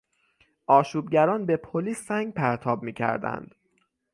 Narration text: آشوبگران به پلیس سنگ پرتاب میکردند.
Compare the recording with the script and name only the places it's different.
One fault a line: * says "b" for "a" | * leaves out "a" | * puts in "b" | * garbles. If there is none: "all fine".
all fine